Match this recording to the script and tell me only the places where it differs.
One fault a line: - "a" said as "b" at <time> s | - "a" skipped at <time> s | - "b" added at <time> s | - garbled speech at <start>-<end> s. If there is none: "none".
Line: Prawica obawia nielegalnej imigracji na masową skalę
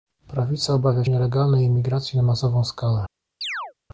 none